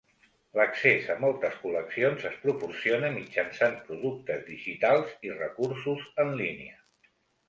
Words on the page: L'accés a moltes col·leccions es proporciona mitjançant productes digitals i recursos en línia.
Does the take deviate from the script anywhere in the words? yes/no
no